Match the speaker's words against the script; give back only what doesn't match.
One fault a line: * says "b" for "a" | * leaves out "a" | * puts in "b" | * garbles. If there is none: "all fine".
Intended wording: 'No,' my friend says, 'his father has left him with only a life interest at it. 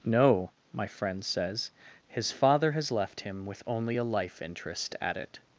all fine